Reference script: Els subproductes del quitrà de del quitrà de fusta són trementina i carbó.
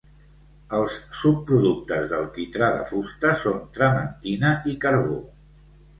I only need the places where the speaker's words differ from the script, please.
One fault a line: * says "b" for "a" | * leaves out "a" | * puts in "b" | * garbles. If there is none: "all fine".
* leaves out "del quitrà de"